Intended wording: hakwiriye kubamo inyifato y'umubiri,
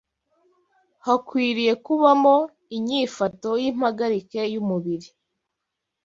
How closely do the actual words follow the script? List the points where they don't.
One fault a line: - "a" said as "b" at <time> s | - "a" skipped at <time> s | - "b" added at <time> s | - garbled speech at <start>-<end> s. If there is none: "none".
- "y'impagarike" added at 3.6 s